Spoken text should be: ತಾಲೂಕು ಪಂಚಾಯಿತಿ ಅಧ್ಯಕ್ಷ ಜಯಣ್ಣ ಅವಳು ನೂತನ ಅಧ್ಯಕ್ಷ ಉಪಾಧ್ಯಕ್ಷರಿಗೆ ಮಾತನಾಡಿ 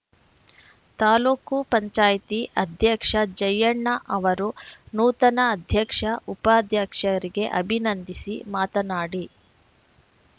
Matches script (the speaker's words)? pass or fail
fail